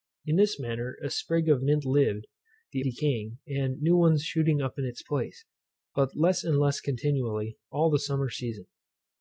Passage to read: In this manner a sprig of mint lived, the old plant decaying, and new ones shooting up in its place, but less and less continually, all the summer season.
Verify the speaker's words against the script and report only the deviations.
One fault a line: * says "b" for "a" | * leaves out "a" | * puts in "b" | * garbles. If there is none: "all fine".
* leaves out "old plant"